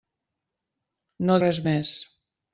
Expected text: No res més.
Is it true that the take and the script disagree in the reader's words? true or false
false